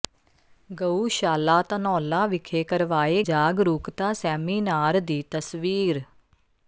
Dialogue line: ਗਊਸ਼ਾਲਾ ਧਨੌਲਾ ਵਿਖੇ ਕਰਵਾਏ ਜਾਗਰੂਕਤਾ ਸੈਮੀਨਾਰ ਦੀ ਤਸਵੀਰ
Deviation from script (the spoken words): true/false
false